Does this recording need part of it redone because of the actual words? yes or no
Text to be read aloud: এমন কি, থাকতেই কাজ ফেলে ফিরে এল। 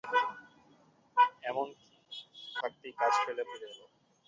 no